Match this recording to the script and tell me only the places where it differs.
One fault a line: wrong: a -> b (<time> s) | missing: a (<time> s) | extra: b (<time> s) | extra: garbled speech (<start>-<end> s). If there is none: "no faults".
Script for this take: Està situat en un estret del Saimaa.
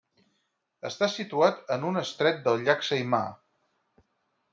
extra: llac (2.7 s)